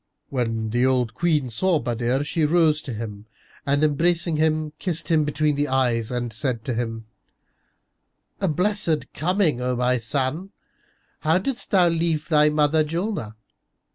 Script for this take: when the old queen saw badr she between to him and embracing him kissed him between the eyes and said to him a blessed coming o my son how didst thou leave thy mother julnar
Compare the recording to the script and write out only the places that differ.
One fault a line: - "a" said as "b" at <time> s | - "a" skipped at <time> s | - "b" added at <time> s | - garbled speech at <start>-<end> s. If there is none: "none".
- "between" said as "rose" at 2.4 s